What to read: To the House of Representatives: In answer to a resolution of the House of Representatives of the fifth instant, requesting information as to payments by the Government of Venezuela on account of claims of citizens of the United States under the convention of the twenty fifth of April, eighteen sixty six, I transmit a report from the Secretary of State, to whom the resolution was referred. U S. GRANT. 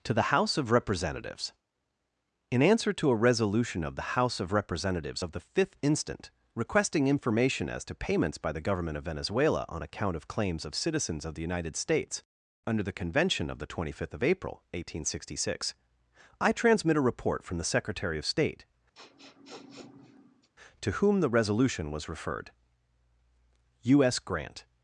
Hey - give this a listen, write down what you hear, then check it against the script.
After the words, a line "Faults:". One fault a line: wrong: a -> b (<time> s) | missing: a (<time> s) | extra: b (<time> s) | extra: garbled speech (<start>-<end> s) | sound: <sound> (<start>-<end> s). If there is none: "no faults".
To the House of Representatives: In answer to a resolution of the House of Representatives of the fifth instant, requesting information as to payments by the Government of Venezuela on account of claims of citizens of the United States under the convention of the twenty fifth of April, eighteen sixty six, I transmit a report from the Secretary of State, to whom the resolution was referred. U S. GRANT.
Faults:
sound: sniff (18.9-20.5 s)